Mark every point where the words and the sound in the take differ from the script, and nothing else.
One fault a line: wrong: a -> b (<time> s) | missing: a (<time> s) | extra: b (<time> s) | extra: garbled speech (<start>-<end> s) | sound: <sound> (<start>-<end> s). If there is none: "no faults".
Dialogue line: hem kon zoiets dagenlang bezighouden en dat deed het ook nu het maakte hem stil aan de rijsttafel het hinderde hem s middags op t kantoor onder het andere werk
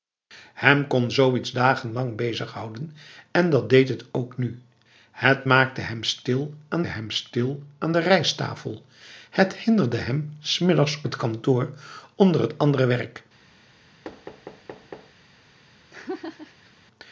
extra: hem stil aan (6.9 s)
missing: op (11.0 s)
sound: thud (14.0-15.1 s)
sound: laugh (15.9-16.7 s)